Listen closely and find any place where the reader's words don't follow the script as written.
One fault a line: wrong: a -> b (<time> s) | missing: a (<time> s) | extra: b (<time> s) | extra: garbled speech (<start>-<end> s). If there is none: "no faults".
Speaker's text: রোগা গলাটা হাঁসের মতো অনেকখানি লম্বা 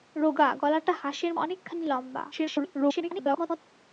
missing: মতো (1.3 s)
extra: garbled speech (2.3-3.6 s)